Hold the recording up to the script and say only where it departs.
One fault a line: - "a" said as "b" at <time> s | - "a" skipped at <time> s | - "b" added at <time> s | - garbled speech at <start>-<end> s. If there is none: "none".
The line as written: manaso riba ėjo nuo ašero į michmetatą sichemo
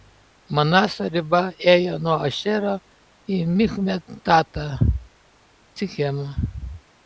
none